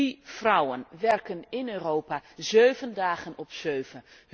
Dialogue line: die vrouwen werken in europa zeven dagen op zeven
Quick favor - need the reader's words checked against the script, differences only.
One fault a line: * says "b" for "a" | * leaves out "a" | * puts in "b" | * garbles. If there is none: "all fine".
all fine